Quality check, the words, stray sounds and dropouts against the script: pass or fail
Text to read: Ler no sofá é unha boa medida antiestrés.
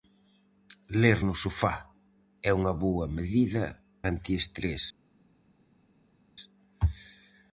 pass